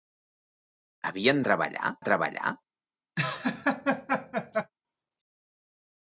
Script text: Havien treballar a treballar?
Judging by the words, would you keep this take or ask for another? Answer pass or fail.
pass